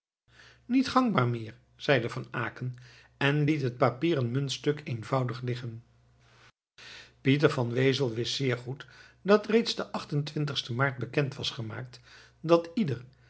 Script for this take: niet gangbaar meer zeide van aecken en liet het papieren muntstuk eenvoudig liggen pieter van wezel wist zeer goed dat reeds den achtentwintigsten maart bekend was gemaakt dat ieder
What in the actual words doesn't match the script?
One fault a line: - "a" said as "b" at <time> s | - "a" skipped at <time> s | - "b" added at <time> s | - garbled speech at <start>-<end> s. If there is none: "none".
none